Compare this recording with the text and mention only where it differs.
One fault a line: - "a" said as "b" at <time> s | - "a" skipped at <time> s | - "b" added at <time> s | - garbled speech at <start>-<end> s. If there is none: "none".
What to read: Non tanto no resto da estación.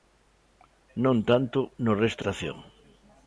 - "da" skipped at 2.2 s